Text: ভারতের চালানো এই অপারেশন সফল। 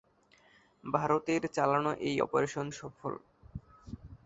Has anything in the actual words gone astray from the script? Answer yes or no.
no